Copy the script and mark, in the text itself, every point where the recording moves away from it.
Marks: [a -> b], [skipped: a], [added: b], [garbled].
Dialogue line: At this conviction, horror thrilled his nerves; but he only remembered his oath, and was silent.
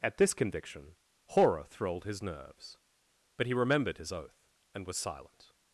At this conviction, horror thrilled his nerves; but he [skipped: only] remembered his oath, and was silent.